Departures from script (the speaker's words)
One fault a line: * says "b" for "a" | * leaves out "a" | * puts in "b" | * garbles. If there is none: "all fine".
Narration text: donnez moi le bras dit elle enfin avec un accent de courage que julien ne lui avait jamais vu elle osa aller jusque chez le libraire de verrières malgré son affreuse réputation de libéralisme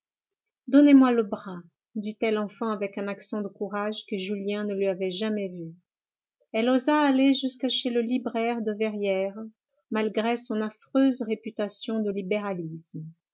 all fine